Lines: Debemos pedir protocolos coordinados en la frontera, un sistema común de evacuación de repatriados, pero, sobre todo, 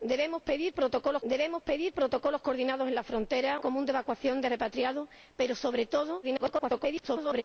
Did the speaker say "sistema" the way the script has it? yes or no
no